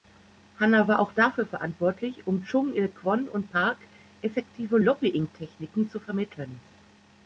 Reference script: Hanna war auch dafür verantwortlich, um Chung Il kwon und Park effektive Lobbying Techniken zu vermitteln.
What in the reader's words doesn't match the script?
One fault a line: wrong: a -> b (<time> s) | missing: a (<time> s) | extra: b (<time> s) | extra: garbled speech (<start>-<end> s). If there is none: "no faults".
no faults